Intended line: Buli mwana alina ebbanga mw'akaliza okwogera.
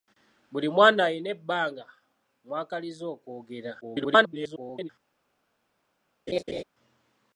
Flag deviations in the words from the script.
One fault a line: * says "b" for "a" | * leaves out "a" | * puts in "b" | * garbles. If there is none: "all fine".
* garbles